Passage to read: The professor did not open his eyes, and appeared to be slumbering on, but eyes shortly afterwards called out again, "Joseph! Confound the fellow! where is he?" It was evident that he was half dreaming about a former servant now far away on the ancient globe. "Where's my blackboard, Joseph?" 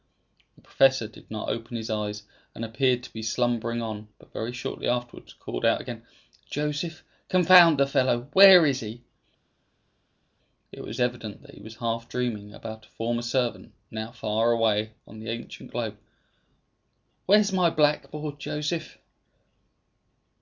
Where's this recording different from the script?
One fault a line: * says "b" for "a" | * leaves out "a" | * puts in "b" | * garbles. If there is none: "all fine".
* says "very" for "eyes"